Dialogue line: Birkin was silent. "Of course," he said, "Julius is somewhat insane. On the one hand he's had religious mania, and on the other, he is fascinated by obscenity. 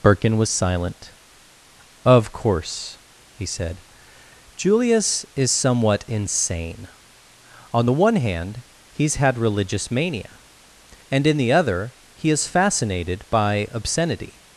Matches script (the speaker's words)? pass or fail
fail